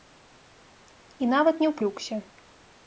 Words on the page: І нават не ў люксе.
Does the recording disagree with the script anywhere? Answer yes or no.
no